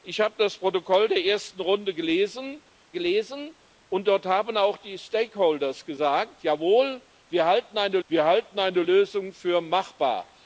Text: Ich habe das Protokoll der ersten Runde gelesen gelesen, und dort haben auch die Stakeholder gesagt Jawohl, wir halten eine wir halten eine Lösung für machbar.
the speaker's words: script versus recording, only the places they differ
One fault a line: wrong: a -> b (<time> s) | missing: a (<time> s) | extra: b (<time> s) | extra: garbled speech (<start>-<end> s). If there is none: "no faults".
no faults